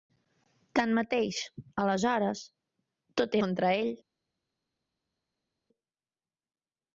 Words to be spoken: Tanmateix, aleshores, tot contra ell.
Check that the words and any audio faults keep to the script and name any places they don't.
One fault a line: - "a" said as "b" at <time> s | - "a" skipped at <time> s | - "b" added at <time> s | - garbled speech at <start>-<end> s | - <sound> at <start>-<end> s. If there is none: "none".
none